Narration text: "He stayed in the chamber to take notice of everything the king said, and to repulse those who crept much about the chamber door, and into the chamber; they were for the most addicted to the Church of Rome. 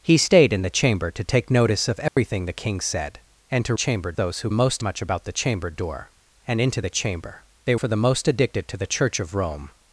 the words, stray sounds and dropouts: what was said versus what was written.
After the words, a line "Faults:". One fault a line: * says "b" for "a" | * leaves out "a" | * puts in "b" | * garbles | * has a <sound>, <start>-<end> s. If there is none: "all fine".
"He stayed in the chamber to take notice of everything the king said, and to chamber those who most much about the chamber door, and into the chamber; they for the most addicted to the Church of Rome.
Faults:
* has a dropout, 2.1-2.2 s
* says "chamber" for "repulse"
* says "most" for "crept"
* leaves out "were"